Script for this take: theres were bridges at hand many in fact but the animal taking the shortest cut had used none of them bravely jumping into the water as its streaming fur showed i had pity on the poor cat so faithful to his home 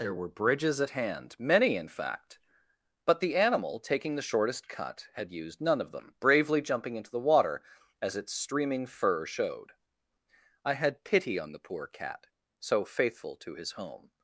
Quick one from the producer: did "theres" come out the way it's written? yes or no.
no